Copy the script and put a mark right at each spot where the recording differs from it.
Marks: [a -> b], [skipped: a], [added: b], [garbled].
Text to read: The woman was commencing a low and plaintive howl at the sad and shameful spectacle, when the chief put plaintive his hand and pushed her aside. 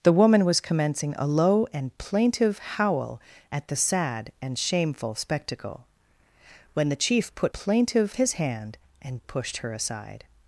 The woman was commencing a low and plaintive howl at the sad and shameful spectacle, when the chief put plaintive his hand and pushed her aside.